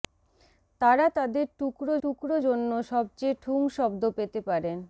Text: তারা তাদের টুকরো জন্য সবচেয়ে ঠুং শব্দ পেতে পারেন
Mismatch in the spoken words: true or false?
true